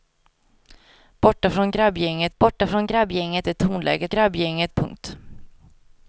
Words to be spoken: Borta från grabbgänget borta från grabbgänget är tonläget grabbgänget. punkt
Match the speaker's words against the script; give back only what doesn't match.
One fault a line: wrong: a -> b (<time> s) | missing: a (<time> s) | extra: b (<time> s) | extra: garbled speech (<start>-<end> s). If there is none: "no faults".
no faults